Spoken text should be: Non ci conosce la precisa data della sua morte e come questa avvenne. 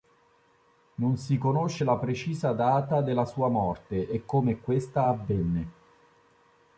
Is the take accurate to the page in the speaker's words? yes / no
no